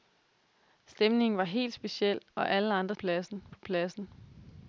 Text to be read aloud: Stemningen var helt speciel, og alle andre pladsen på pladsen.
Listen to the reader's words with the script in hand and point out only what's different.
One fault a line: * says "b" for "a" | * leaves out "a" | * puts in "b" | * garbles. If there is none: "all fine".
all fine